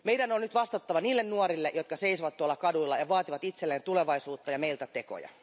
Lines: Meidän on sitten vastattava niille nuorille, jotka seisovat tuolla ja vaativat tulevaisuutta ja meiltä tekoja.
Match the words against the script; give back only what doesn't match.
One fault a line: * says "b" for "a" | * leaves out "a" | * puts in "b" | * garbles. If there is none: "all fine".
* says "nyt" for "sitten"
* puts in "kaduilla"
* puts in "itselleen"